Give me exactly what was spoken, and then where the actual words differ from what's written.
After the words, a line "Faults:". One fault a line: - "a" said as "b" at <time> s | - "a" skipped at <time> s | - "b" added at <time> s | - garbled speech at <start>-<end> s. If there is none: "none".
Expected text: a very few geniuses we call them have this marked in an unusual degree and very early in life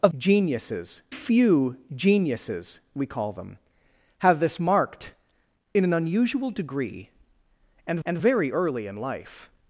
a geniuses few geniuses we call them have this marked in an unusual degree and and very early in life
Faults:
- "very" said as "geniuses" at 0.1 s
- "and" added at 8.1 s